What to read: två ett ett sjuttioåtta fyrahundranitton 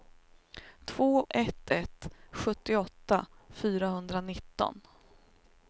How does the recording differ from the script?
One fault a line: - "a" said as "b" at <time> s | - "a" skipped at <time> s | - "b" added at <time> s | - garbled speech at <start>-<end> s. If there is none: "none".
none